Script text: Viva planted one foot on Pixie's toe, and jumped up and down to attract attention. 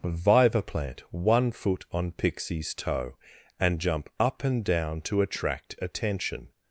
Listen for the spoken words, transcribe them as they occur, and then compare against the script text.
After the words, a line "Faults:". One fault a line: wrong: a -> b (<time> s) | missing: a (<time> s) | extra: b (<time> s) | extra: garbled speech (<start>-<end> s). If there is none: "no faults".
Viva plant one foot on Pixie's toe, and jump up and down to attract attention.
Faults:
wrong: planted -> plant (0.6 s)
wrong: jumped -> jump (3.8 s)